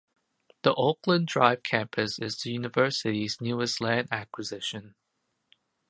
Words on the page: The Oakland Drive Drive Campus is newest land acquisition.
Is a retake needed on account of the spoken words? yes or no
yes